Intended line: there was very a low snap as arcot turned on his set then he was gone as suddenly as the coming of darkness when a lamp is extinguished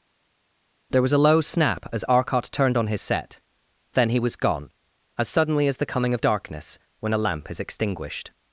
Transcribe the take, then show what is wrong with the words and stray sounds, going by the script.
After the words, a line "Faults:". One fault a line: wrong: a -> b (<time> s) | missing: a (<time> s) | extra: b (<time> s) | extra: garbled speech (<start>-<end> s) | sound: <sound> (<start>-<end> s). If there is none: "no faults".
there was a low snap as arcot turned on his set then he was gone as suddenly as the coming of darkness when a lamp is extinguished
Faults:
missing: very (1.1 s)